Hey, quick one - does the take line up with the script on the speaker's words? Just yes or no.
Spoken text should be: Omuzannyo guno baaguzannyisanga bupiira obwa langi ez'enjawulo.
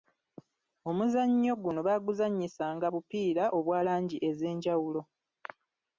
yes